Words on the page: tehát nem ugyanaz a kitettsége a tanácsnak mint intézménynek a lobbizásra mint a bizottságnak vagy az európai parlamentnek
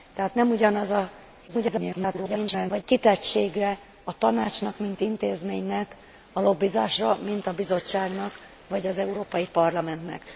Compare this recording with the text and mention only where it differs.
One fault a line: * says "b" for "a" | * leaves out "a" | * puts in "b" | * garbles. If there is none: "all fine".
* garbles